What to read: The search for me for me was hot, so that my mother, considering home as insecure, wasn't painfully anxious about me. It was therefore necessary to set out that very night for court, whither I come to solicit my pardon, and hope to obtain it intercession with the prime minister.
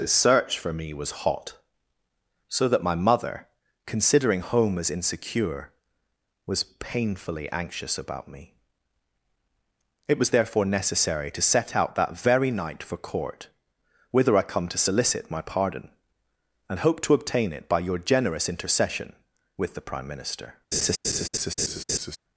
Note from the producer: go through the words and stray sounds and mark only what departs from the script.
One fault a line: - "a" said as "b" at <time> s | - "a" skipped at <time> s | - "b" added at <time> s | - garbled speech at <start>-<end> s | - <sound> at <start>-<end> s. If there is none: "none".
- "for me" skipped at 0.9 s
- "wasn't" said as "was" at 6.5 s
- "by your generous" added at 17.7 s
- laugh at 20.7-22.2 s